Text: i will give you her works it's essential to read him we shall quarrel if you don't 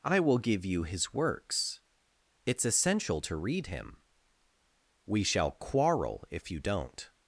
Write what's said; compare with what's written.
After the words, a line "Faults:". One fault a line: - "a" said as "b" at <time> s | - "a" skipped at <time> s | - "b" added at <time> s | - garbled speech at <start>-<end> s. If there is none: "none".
i will give you his works it's essential to read him we shall quarrel if you don't
Faults:
- "her" said as "his" at 0.8 s